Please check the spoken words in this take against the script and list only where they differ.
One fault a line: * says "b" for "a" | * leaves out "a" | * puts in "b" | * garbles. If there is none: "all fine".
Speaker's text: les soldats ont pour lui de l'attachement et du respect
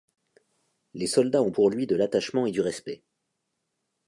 all fine